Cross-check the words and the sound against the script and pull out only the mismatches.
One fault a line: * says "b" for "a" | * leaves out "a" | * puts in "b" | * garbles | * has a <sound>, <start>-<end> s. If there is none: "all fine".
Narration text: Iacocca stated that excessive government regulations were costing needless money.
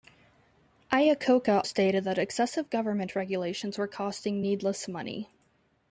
all fine